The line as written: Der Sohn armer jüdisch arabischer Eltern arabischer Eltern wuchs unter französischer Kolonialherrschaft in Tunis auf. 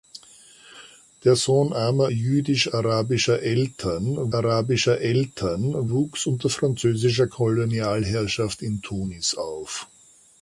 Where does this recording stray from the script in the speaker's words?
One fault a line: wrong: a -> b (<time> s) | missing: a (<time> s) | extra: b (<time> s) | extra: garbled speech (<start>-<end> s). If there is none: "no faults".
no faults